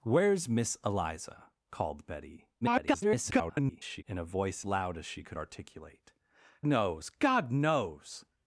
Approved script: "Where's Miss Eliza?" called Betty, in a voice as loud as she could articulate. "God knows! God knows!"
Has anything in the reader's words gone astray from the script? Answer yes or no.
yes